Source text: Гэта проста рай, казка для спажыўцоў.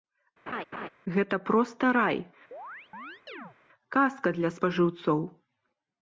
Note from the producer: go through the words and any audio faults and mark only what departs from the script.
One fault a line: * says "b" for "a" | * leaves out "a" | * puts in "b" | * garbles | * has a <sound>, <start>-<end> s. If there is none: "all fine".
* has a laugh, 0.5-0.9 s
* has a chirp, 2.5-3.6 s